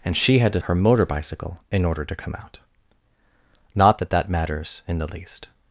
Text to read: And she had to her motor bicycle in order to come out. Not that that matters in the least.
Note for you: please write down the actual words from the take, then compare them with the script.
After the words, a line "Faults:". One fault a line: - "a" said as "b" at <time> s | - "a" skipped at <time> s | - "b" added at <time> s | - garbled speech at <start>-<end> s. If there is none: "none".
And she had to her motor bicycle in order to come out. Not that that matters in the least.
Faults:
none